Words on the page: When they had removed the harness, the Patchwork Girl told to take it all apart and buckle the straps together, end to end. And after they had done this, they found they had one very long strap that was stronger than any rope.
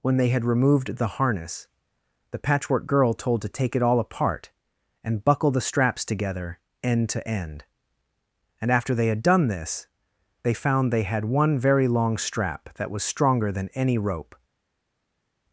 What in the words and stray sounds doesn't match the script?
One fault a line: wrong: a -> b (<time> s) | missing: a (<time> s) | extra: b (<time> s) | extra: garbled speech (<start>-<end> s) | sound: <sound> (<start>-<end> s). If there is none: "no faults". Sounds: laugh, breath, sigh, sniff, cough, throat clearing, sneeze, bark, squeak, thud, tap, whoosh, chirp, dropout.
no faults